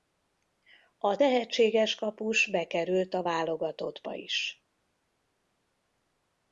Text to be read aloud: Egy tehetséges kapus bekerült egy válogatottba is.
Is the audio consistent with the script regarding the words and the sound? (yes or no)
no